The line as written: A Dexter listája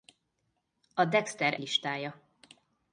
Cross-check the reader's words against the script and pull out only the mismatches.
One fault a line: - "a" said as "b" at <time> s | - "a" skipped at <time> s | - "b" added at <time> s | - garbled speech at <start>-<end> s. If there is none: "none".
none